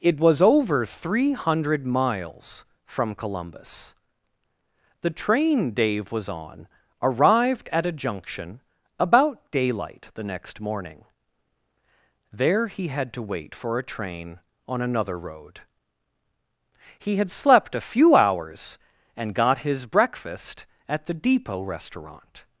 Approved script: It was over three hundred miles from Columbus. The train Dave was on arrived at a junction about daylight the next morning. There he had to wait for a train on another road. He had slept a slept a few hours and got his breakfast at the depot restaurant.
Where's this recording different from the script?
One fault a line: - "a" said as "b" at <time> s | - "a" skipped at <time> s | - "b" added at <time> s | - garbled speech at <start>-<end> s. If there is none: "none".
- "slept a" skipped at 17.9 s